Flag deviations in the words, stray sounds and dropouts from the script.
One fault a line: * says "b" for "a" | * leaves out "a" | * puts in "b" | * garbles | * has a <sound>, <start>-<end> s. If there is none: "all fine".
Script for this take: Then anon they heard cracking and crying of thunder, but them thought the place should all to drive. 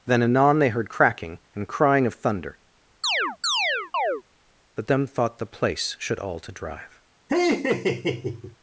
* has a chirp, 3.0-4.2 s
* has a laugh, 7.3-8.6 s